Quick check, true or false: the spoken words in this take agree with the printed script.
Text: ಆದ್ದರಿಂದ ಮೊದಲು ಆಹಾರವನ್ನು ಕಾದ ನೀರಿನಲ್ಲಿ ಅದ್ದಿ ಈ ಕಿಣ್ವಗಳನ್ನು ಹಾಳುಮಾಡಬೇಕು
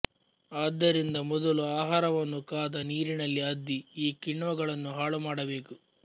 true